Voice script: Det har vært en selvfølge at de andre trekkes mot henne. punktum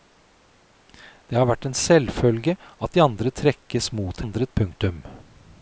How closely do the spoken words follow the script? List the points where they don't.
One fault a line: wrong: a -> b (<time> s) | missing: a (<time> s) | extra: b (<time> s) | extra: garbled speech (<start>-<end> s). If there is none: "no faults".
wrong: henne -> andre (4.2 s)